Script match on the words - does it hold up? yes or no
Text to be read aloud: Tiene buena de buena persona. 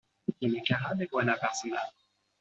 no